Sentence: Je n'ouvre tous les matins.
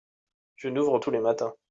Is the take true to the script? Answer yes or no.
yes